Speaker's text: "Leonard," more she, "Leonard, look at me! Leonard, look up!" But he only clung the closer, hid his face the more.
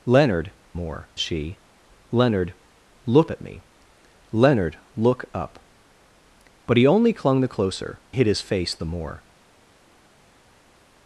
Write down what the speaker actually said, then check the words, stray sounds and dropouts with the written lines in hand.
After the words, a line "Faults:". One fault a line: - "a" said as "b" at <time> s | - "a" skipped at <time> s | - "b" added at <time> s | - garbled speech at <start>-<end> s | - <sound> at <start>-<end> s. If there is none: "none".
"Leonard," more she, "Leonard, look at me! Leonard, look up!" But he only clung the closer, hid his face the more.
Faults:
none